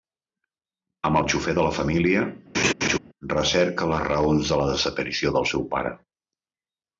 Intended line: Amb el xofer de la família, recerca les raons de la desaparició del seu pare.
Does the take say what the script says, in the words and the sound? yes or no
no